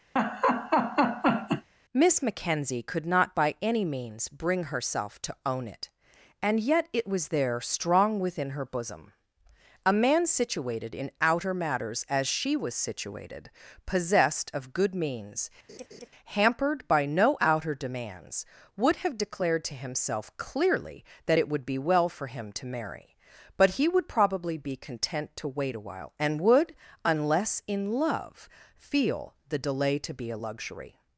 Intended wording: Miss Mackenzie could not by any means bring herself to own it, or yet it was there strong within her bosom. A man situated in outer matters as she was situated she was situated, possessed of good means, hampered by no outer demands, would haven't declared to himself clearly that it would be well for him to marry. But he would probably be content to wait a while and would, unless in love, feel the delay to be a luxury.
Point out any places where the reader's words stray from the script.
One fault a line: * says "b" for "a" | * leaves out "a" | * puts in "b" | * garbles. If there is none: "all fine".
* says "and" for "or"
* leaves out "she was situated"
* says "have" for "haven't"